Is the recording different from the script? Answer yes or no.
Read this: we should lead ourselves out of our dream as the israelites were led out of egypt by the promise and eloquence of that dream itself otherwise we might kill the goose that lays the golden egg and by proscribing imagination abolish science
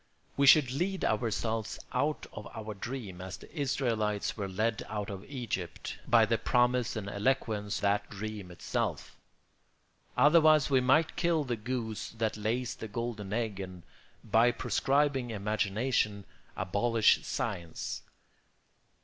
yes